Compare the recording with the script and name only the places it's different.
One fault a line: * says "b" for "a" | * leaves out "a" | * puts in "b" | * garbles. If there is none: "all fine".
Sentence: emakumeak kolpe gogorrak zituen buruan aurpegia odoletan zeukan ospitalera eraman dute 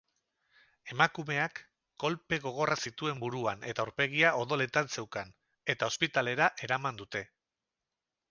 * puts in "eta"
* puts in "eta"